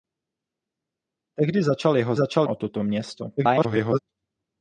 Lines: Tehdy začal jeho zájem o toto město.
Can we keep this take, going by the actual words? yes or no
no